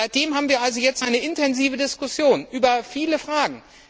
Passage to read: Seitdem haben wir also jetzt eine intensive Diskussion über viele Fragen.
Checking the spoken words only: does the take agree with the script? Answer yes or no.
yes